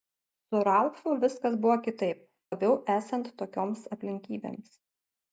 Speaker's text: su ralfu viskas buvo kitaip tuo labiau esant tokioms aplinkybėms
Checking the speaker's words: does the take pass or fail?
fail